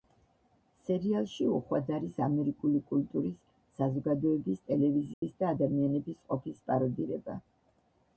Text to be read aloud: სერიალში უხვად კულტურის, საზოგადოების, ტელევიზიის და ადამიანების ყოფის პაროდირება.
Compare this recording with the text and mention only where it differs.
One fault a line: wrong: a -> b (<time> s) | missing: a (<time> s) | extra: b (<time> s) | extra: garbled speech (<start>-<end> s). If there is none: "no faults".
extra: არის ამერიკული (2.0 s)